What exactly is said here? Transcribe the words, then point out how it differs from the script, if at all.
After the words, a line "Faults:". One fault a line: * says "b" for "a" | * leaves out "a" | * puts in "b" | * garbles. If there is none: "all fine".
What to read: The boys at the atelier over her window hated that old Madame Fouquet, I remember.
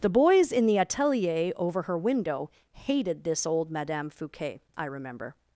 The boys in the atelier over her window hated this old Madame Fouquet, I remember.
Faults:
* says "in" for "at"
* says "this" for "that"